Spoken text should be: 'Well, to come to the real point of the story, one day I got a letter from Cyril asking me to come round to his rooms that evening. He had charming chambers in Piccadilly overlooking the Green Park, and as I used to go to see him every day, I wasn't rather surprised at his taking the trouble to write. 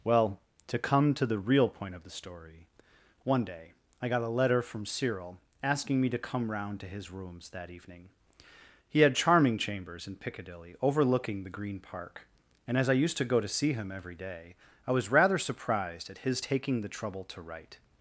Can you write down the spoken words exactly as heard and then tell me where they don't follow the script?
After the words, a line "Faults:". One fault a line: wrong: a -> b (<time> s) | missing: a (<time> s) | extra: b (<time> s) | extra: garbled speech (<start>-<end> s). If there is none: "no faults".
'Well, to come to the real point of the story, one day I got a letter from Cyril asking me to come round to his rooms that evening. He had charming chambers in Piccadilly overlooking the Green Park, and as I used to go to see him every day, I was rather surprised at his taking the trouble to write.
Faults:
wrong: wasn't -> was (14.9 s)